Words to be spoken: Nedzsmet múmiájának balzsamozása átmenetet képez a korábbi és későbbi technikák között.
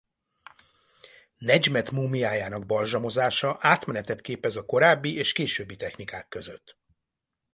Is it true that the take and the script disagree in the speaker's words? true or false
false